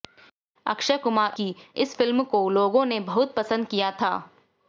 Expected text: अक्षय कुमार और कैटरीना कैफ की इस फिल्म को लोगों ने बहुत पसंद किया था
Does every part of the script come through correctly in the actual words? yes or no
no